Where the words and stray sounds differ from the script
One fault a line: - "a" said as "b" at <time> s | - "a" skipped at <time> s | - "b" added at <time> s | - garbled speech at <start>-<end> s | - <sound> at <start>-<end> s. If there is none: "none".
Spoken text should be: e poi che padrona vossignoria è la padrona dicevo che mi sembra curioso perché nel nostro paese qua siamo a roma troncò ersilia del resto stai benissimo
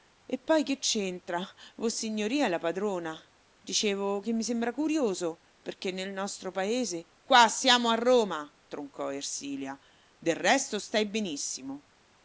- "padrona" said as "c'entra" at 0.8 s